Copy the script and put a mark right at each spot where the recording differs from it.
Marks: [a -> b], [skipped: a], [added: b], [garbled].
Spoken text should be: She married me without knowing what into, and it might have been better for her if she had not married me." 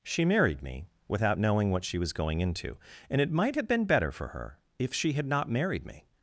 She married me without knowing what [added: she was going] into, and it might have been better for her if she had not married me."